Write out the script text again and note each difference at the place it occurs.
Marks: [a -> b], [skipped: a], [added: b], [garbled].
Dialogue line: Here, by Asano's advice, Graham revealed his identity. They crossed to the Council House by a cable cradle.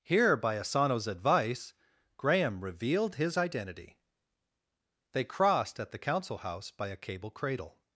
Here, by Asano's advice, Graham revealed his identity. They crossed [to -> at] the Council House by a cable cradle.